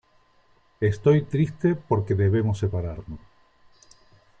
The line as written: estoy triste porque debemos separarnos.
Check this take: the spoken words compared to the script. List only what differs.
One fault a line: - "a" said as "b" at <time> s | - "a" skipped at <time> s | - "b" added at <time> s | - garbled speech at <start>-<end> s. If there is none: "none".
none